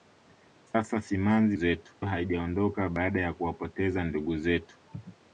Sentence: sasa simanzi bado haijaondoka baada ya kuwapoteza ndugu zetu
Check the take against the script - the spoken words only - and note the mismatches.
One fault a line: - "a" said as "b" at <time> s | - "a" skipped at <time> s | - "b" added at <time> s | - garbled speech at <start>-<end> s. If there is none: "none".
- "bado" said as "zetu" at 1.5 s